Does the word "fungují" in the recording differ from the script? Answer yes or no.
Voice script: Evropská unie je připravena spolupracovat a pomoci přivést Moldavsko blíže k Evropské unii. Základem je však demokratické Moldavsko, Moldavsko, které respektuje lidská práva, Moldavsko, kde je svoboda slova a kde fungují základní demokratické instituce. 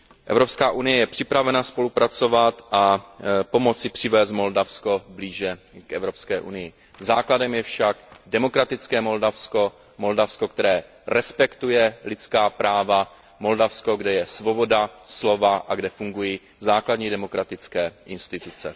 no